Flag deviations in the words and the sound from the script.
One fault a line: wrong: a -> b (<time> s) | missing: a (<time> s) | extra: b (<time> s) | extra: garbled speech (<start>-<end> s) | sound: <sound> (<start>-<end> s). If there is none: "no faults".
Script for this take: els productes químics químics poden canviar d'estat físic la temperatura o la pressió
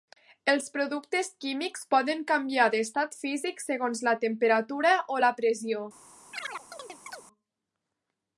missing: químics (1.9 s)
extra: segons (3.6 s)
sound: chirp (6.3-7.3 s)